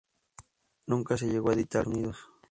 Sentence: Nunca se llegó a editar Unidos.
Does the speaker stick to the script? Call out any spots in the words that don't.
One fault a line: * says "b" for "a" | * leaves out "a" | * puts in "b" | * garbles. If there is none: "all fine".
all fine